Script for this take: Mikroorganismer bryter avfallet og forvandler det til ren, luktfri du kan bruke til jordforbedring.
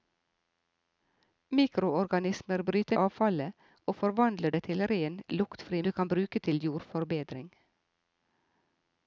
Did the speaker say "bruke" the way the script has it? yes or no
yes